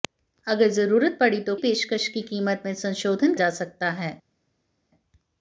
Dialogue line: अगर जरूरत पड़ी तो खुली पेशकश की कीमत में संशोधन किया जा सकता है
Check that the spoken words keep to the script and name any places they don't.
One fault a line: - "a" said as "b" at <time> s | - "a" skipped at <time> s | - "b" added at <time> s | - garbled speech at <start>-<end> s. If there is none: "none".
- "खुली" skipped at 1.6 s
- "किया" skipped at 3.3 s